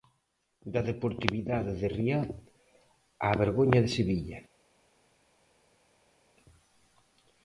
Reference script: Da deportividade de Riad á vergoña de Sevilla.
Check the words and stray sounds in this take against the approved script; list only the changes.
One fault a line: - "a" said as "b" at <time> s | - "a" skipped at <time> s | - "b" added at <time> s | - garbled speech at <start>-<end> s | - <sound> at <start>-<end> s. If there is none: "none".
none